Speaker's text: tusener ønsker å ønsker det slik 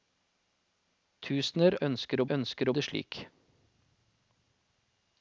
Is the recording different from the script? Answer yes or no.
no